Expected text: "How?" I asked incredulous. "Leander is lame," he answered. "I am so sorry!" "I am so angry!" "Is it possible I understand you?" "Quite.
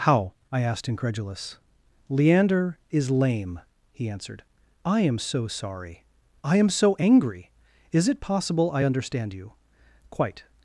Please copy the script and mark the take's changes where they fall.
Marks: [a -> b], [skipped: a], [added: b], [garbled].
"How?" I asked incredulous. "Leander is lame," he answered. "I am so sorry!" "I am so angry!" "Is it possible I understand you?" "Quite.